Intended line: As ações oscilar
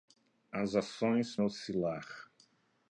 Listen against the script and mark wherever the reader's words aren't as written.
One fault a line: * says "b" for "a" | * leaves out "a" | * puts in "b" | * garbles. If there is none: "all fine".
all fine